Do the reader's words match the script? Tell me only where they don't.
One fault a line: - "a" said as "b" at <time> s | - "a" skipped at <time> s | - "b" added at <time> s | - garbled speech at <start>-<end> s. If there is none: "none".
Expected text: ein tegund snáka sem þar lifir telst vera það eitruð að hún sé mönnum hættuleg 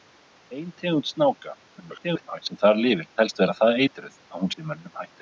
- garbled speech at 1.8-2.4 s